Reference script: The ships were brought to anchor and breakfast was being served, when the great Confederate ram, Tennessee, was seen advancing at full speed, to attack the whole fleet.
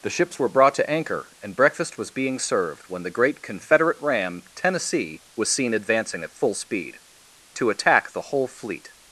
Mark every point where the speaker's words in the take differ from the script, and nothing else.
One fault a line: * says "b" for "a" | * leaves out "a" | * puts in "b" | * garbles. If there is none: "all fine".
all fine